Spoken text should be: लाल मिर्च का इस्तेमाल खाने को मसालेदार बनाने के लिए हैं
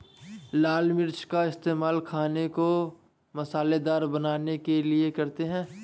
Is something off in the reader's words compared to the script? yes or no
yes